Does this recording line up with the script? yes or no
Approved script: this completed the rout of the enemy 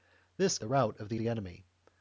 no